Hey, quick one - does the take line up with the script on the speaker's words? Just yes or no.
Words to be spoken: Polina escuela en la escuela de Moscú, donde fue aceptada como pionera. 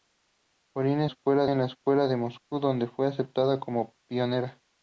yes